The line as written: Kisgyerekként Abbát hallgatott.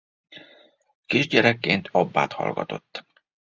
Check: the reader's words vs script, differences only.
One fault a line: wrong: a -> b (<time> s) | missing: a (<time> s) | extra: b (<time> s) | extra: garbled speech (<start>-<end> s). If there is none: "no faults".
no faults